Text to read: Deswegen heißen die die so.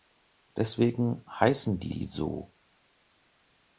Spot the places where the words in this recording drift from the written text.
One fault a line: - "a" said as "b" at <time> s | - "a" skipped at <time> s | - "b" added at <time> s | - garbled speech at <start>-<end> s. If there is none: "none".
none